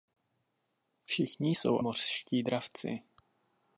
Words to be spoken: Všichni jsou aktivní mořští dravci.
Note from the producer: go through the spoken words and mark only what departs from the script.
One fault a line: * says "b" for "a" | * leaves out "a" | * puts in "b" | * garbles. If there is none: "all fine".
* leaves out "aktivní"